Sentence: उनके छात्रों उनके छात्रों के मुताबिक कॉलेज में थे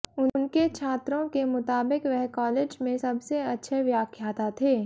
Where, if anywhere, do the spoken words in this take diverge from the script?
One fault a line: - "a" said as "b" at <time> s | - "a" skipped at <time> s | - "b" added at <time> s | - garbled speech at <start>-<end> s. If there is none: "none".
- "उनके छात्रों" skipped at 1.3 s
- "वह" added at 2.0 s
- "सबसे अच्छे व्याख्याता" added at 2.9 s